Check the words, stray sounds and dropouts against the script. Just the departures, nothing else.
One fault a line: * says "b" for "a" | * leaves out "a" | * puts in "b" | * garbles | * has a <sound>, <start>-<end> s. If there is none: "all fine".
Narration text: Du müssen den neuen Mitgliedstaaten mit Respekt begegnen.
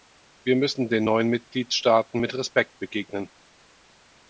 * says "Wir" for "Du"